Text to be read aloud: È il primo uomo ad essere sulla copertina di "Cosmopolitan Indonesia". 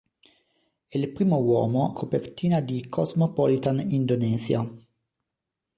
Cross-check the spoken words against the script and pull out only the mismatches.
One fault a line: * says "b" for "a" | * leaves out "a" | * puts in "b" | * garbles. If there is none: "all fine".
* leaves out "ad essere sulla"